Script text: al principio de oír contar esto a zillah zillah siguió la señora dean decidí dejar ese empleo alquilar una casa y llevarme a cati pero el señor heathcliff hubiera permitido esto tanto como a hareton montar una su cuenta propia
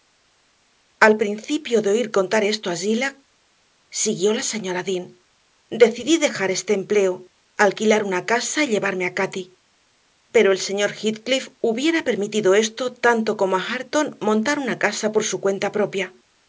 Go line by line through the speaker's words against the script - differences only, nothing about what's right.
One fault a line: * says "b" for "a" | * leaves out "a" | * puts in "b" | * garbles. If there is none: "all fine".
* leaves out "zillah"
* says "este" for "ese"
* puts in "casa por"